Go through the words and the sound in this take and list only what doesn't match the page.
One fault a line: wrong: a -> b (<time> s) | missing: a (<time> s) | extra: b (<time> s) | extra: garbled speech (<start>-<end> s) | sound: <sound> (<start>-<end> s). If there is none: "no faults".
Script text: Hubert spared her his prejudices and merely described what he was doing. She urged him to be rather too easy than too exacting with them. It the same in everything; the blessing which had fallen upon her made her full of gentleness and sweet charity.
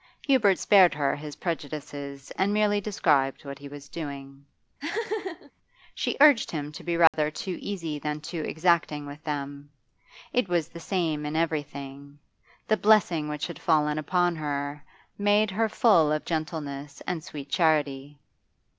sound: laugh (4.8-5.5 s)
sound: dropout (7.1-7.1 s)
extra: was (10.5 s)